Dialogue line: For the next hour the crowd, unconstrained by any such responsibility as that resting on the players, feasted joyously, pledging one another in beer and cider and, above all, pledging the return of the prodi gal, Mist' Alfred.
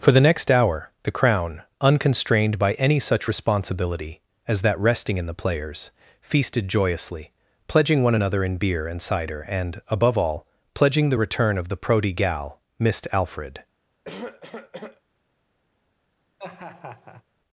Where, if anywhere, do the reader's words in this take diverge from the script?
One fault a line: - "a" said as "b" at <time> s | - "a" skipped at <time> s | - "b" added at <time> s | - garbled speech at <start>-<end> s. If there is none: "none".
- "crowd" said as "crown" at 1.1 s
- "on" said as "in" at 5.2 s